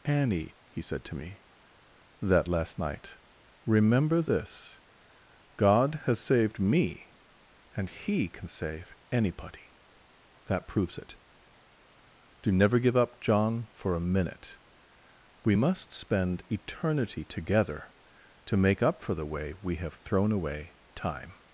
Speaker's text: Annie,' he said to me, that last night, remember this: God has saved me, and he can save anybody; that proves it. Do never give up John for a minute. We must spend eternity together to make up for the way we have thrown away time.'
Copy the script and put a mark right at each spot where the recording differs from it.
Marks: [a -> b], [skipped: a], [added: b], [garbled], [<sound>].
Annie,' he said to me, that last night, remember this: God has saved me, and he can save anybody; that proves it. Do never give up John for a minute. We must spend eternity together to make up for the way we have thrown away time.'